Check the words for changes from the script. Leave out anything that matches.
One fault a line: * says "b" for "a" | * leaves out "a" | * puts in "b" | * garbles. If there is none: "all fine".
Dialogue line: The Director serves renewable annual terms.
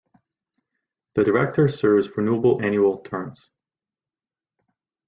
all fine